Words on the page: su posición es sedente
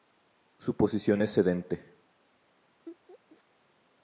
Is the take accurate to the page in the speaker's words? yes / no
yes